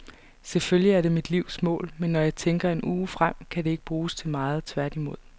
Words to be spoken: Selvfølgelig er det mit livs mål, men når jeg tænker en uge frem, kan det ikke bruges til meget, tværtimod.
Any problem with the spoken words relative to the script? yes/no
no